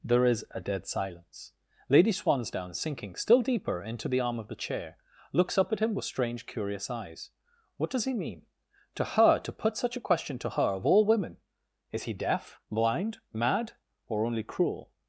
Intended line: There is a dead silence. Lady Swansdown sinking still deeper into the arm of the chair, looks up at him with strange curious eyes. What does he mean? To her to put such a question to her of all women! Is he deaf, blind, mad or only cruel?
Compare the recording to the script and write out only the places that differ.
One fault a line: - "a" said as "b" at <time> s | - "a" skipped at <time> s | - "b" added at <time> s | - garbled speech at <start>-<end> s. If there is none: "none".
none